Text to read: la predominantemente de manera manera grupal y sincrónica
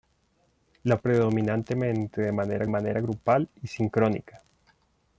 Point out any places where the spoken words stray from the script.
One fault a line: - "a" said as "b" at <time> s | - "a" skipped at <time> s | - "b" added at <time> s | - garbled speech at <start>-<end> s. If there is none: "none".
none